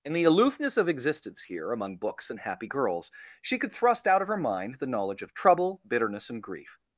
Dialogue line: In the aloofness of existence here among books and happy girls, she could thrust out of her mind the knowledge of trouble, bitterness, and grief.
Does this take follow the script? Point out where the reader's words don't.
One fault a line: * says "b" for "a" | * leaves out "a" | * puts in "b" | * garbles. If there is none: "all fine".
all fine